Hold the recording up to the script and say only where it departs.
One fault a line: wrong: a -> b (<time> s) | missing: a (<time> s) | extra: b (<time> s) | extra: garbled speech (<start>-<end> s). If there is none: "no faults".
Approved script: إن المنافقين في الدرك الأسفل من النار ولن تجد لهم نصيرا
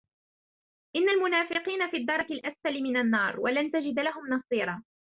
no faults